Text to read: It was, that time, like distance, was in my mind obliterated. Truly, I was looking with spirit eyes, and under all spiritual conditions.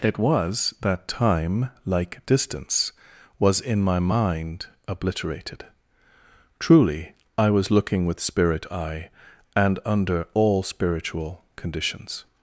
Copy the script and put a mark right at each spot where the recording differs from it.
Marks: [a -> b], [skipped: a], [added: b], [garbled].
It was, that time, like distance, was in my mind obliterated. Truly, I was looking with spirit [eyes, -> eye] and under all spiritual conditions.